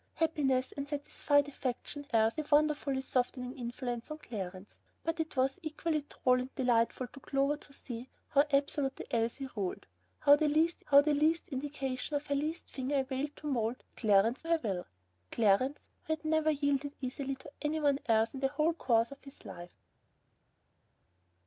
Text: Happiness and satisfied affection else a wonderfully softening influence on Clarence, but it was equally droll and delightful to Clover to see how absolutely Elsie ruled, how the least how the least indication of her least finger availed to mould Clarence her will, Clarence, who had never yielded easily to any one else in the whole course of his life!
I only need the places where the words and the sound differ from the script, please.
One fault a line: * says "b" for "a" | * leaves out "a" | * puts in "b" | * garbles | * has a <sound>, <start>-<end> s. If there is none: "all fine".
all fine